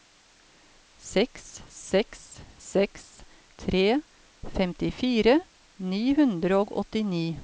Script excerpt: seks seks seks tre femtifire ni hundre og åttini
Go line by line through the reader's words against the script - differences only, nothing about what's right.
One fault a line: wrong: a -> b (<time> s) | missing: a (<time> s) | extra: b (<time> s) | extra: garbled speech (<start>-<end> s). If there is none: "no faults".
no faults